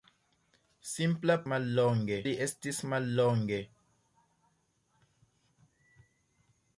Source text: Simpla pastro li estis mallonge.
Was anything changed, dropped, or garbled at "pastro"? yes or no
yes